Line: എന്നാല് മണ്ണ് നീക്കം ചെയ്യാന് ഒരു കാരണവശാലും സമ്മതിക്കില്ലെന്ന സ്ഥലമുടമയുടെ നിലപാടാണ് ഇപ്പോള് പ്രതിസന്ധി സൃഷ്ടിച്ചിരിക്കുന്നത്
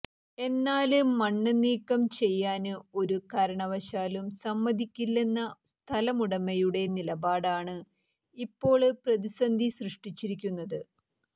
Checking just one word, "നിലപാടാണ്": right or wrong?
right